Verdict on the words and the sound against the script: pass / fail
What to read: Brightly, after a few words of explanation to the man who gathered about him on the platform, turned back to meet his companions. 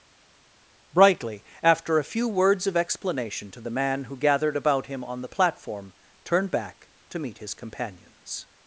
pass